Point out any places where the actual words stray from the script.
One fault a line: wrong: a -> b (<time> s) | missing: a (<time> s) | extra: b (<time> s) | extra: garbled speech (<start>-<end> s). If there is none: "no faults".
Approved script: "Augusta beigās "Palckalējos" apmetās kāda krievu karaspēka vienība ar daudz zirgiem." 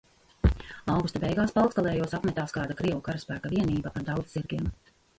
no faults